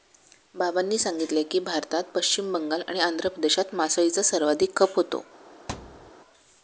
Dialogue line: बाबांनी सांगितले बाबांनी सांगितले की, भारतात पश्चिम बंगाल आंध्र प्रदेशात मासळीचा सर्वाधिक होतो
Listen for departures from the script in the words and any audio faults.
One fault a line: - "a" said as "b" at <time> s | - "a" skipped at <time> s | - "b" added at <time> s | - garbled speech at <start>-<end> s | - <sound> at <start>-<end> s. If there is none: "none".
- "बाबांनी सांगितले" skipped at 1.4 s
- "आणि" added at 2.9 s
- "खप" added at 4.8 s
- thud at 5.7-6.1 s